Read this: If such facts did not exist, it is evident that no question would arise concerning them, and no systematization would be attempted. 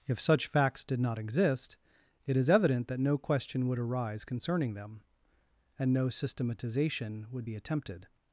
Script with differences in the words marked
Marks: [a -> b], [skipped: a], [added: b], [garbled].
If such facts did not exist, it is evident that no question would arise concerning them, and no systematization would be attempted.